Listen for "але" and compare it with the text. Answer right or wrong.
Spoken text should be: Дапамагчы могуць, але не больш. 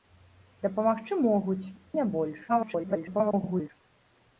wrong